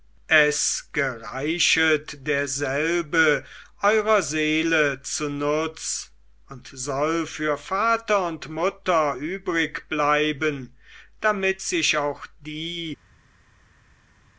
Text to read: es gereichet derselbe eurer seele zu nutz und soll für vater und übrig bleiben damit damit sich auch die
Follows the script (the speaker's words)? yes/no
no